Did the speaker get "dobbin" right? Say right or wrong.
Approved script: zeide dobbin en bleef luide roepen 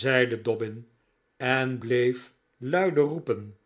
right